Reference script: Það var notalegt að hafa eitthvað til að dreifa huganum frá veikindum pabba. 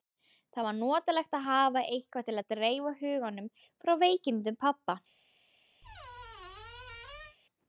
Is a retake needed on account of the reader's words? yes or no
no